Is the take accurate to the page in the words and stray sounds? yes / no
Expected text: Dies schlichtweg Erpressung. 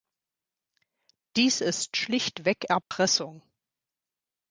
no